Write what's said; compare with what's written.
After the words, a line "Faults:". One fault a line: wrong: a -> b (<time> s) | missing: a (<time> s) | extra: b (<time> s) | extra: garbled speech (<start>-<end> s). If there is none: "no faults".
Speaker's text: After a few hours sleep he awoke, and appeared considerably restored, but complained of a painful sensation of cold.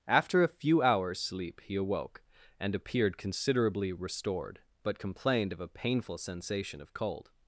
After a few hours sleep he awoke, and appeared considerably restored, but complained of a painful sensation of cold.
Faults:
no faults